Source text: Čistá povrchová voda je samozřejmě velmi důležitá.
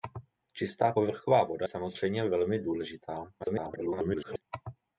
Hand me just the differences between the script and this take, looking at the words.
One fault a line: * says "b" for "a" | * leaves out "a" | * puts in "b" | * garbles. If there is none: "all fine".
* leaves out "je"
* garbles